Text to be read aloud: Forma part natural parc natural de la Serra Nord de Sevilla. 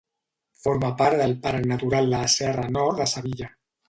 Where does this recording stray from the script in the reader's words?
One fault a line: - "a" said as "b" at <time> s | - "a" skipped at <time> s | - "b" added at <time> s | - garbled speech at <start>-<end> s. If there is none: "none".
- "natural" said as "del" at 1.2 s